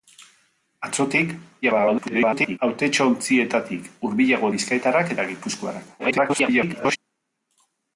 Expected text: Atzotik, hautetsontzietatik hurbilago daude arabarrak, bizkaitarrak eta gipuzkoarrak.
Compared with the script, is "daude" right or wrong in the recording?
wrong